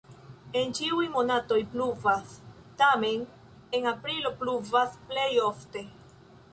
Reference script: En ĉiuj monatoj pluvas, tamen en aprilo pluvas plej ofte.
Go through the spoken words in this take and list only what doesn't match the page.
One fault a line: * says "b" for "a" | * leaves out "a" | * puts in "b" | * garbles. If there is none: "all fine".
all fine